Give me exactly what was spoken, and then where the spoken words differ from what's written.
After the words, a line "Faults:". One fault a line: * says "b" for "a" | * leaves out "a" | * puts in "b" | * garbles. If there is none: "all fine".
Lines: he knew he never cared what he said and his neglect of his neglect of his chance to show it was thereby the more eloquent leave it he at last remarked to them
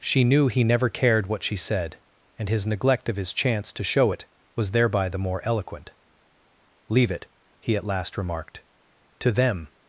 she knew he never cared what she said and his neglect of his chance to show it was thereby the more eloquent leave it he at last remarked to them
Faults:
* says "she" for "he"
* says "she" for "he"
* leaves out "neglect of his"